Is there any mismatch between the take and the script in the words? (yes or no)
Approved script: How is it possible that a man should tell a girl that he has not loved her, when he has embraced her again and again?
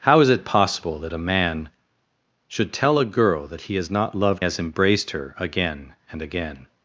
yes